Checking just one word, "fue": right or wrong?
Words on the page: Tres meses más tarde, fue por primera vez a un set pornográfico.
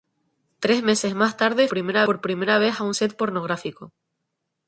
wrong